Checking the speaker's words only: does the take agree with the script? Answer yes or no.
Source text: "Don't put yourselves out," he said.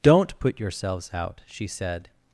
no